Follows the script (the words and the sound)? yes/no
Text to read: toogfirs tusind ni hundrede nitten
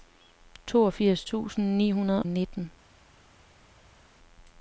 yes